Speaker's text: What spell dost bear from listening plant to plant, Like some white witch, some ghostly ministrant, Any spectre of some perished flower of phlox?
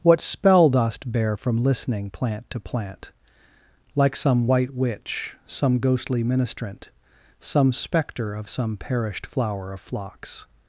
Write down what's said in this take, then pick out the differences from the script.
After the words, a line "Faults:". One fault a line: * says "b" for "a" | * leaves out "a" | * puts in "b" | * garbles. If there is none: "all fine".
What spell dost bear from listening plant to plant, Like some white witch, some ghostly ministrant, Some spectre of some perished flower of phlox?
Faults:
* says "Some" for "Any"